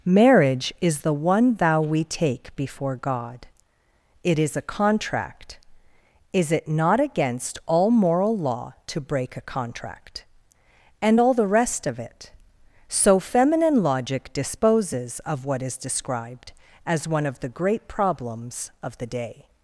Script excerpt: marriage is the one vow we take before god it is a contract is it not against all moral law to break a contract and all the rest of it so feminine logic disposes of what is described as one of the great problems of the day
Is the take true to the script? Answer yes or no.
yes